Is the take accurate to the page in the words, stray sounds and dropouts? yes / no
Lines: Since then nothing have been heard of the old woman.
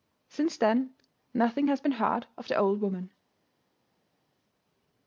no